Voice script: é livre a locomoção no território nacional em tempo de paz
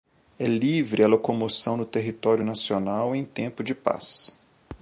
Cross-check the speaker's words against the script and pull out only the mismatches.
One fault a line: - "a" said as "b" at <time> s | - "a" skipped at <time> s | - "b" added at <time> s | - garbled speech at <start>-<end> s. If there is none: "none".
none